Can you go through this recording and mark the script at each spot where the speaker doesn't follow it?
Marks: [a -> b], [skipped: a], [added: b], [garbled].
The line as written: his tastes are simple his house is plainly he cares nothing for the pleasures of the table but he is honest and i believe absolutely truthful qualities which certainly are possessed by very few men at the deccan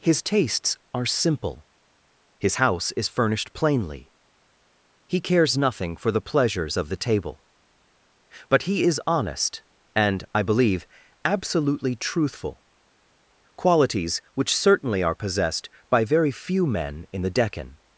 his tastes are simple his house is [added: furnished] plainly he cares nothing for the pleasures of the table but he is honest and i believe absolutely truthful qualities which certainly are possessed by very few men [at -> in] the deccan